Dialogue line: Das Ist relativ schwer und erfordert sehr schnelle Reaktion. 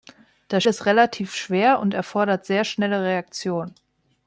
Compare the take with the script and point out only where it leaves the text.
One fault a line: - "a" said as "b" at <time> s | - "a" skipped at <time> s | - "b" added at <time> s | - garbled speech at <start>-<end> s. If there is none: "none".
none